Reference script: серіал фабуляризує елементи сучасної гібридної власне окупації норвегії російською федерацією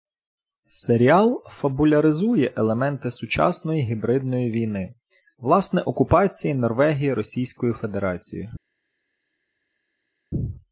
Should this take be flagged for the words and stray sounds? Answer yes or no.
yes